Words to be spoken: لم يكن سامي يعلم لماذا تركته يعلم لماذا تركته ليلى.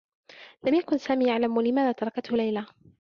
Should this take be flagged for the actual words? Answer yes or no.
yes